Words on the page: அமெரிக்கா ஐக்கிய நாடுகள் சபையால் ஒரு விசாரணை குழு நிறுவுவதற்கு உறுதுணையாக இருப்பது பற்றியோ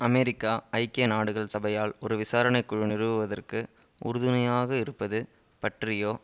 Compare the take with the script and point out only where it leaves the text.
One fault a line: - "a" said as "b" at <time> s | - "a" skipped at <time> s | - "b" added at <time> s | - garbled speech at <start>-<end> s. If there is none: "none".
none